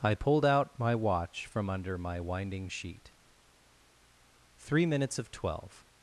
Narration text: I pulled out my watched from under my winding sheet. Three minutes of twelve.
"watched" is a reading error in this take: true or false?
true